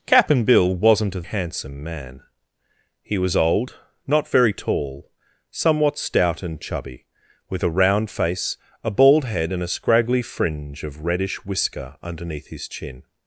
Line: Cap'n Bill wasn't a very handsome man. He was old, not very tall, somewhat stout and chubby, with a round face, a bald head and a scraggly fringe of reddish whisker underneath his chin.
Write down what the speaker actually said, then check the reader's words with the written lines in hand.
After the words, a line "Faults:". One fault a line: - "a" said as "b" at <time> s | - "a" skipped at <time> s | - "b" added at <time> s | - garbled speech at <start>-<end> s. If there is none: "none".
Cap'n Bill wasn't a handsome man. He was old, not very tall, somewhat stout and chubby, with a round face, a bald head and a scraggly fringe of reddish whisker underneath his chin.
Faults:
- "very" skipped at 1.2 s